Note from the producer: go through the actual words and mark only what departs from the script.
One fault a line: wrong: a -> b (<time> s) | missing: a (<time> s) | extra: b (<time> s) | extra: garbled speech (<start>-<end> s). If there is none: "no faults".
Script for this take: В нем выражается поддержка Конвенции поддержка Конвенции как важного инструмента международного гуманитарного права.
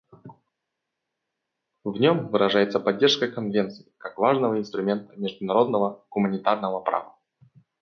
missing: поддержка Конвенции (3.9 s)